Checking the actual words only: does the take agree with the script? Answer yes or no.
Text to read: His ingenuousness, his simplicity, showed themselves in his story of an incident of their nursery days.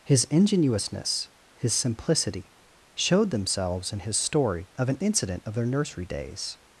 yes